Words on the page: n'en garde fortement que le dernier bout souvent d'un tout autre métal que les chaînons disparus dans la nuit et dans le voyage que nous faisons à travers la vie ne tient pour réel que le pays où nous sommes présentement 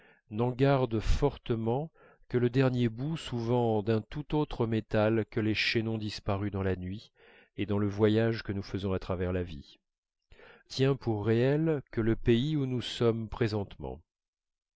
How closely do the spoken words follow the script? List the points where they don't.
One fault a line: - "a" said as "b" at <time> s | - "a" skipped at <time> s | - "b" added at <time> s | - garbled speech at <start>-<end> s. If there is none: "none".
- "ne" skipped at 9.8 s